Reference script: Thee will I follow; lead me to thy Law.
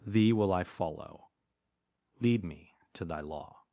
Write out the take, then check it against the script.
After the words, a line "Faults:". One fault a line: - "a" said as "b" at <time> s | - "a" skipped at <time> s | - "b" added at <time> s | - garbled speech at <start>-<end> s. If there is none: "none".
Thee will I follow; lead me to thy Law.
Faults:
none